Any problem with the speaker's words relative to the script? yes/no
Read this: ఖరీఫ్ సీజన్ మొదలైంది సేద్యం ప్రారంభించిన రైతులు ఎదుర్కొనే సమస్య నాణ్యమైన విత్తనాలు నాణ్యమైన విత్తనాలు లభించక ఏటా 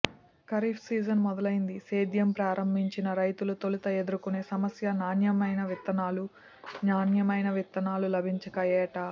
yes